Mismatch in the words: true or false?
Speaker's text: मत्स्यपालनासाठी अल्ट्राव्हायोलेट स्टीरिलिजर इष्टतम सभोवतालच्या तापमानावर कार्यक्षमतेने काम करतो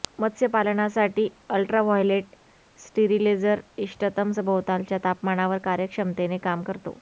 false